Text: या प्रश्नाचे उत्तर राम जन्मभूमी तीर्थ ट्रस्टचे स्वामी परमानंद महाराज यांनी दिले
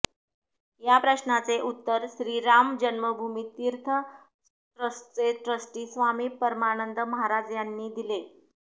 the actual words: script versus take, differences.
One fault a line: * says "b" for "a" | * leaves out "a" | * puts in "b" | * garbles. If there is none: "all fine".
* puts in "श्री"
* puts in "ट्रस्टी"